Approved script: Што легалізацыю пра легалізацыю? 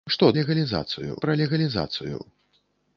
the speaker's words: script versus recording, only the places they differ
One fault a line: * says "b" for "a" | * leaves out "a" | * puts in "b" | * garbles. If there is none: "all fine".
all fine